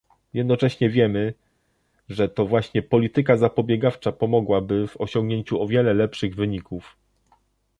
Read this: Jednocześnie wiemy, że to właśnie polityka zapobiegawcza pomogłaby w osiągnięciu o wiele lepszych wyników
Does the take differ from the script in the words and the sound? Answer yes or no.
no